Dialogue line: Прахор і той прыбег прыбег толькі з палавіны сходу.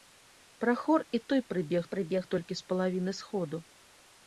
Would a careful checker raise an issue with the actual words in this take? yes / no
no